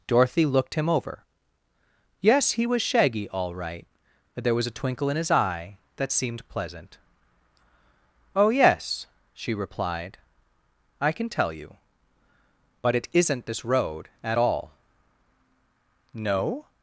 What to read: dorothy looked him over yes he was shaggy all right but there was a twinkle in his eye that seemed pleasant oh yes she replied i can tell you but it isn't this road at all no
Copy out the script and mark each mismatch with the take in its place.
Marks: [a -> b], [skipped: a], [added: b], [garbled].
dorothy looked him over yes he was shaggy all right but there was a twinkle in his eye that seemed pleasant oh yes she replied i can tell you but it isn't this road at all no